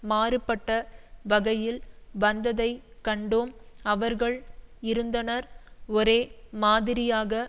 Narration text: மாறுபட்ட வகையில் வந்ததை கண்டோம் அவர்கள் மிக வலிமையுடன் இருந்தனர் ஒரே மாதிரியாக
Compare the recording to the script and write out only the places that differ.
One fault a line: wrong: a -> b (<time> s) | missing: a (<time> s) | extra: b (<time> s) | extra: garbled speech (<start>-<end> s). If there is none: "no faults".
missing: மிக வலிமையுடன் (4.4 s)